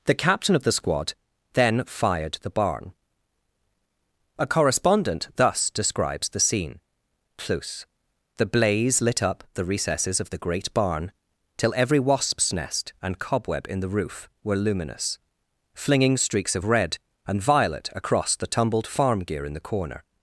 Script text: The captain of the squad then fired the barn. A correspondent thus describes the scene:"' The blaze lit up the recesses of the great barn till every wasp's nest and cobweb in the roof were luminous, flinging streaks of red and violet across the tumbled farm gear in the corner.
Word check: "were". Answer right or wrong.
right